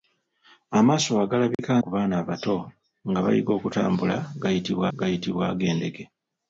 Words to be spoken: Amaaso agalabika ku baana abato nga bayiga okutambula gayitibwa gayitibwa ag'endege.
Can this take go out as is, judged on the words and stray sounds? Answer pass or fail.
fail